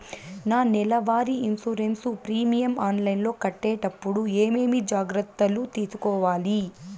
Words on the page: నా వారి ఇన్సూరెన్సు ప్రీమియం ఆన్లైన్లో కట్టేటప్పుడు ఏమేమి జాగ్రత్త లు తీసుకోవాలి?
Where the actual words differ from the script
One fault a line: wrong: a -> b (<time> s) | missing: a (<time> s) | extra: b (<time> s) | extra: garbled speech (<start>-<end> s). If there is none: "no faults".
extra: నెల (0.7 s)